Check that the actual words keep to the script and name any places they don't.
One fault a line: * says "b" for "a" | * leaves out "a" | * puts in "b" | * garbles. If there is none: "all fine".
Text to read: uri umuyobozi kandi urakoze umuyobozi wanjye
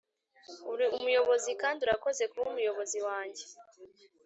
* puts in "kuba"